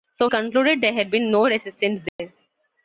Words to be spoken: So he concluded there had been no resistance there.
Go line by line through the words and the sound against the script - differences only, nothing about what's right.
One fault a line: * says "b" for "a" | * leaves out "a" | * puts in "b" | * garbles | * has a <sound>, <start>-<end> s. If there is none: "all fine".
* leaves out "he"
* has a dropout, 2.1-2.2 s